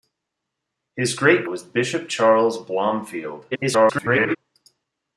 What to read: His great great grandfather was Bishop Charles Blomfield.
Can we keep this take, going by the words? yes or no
no